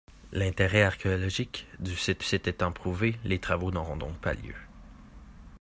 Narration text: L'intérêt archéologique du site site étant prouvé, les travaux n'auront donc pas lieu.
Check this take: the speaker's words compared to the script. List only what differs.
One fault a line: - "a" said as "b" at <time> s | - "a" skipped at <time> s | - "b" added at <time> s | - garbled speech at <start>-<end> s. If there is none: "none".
none